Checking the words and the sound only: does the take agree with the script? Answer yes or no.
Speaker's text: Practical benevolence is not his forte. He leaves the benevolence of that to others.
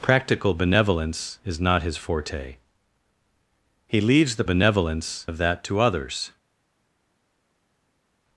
yes